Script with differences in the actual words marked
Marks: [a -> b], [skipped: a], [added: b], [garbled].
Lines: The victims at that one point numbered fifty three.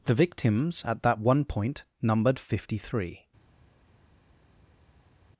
The victims at that one point numbered fifty three.